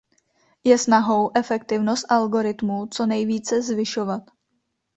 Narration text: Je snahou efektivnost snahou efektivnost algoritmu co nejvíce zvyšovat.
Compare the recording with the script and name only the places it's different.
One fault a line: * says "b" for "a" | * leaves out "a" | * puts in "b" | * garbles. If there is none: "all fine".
* leaves out "snahou efektivnost"